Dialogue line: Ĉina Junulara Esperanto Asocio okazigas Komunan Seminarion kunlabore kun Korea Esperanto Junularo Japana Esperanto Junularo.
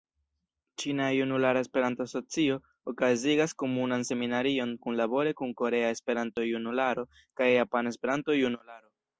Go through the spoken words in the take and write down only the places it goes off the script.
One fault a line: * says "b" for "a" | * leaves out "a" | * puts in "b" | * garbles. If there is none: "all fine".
* puts in "kaj"